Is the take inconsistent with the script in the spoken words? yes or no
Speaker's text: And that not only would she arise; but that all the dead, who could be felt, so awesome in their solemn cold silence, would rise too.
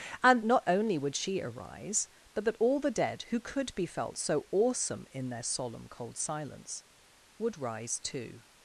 yes